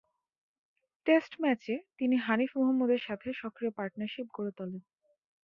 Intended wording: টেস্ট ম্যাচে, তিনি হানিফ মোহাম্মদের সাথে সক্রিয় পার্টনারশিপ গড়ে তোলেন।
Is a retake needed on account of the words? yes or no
no